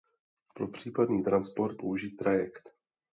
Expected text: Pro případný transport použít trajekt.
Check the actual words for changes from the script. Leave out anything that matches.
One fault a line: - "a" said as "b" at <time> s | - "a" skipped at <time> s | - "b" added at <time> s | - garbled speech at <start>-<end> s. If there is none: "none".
none